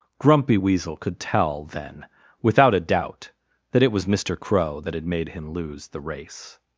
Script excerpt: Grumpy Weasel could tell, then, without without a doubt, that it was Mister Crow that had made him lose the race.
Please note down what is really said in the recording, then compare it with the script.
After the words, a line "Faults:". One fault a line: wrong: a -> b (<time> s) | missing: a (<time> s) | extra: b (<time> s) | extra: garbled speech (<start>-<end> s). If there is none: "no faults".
Grumpy Weasel could tell, then, without a doubt, that it was Mister Crow that had made him lose the race.
Faults:
missing: without (2.7 s)